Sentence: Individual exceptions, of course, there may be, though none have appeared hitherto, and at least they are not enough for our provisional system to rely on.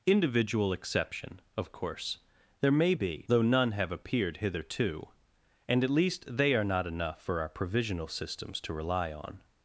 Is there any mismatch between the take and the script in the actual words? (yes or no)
yes